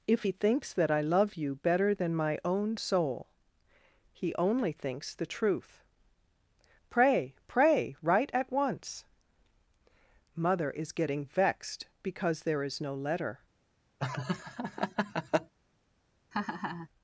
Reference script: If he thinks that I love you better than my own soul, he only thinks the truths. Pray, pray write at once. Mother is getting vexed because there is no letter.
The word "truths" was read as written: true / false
false